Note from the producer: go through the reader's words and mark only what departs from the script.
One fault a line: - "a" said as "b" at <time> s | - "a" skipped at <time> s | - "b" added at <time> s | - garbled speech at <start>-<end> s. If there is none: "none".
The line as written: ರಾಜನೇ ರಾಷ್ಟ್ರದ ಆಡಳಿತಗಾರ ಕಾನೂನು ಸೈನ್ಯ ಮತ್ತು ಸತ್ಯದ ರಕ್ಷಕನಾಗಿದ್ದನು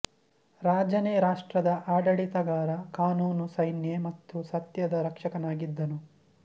none